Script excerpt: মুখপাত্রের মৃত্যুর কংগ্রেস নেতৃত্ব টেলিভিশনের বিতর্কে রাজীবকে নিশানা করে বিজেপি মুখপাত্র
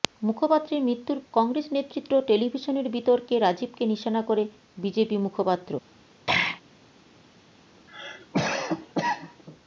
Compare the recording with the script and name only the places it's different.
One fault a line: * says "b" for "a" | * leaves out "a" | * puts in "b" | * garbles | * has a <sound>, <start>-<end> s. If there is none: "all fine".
* has a throat clearing, 6.3-6.6 s
* has a cough, 7.9-9.4 s